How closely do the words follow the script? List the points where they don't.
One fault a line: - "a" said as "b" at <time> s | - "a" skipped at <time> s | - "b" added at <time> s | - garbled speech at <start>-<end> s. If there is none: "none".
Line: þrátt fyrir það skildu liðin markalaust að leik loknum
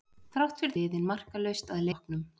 - "það skildu" skipped at 0.7 s
- "leik" skipped at 1.9 s